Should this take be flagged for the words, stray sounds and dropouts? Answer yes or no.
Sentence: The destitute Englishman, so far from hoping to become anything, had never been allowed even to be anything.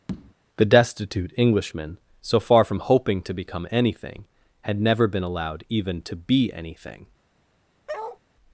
yes